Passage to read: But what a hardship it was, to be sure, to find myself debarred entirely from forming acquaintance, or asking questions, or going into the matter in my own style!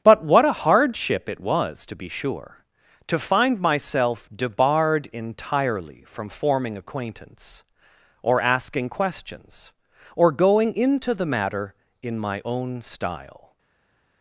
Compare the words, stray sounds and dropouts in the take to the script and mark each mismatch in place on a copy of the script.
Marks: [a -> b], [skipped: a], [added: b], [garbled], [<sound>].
But what a hardship it was, to be sure, to find myself debarred entirely from forming acquaintance, or asking questions, or going into the matter in my own style!